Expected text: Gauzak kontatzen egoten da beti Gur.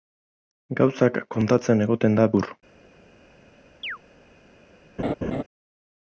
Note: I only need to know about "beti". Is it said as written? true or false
false